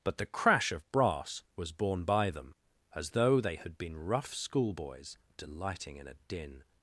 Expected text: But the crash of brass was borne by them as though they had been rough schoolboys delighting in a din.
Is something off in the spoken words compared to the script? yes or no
no